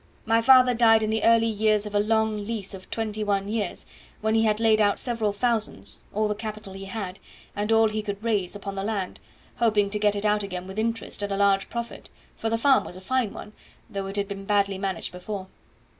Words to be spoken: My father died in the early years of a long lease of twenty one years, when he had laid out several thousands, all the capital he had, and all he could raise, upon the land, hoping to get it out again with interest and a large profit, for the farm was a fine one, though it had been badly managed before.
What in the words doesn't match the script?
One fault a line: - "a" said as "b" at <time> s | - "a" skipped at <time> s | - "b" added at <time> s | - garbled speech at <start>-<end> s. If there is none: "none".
none